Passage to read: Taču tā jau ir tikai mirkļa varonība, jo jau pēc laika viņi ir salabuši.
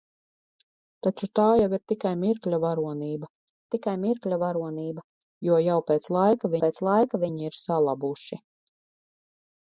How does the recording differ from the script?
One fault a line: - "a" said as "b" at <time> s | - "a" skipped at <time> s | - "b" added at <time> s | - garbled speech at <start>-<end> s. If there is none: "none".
- "tikai mirkļa varonība" added at 3.8 s
- "pēc laika" added at 6.7 s